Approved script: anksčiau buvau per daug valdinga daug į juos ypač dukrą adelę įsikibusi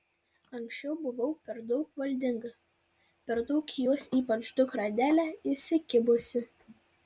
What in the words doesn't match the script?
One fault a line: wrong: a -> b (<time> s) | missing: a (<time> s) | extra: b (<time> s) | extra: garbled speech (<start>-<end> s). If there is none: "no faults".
extra: per (3.3 s)